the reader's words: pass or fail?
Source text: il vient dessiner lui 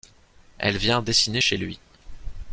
fail